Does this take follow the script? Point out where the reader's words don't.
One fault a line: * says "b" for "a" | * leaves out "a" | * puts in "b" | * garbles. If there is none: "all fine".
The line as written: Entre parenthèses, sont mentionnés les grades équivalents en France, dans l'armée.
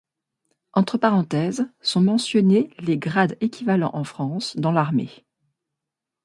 all fine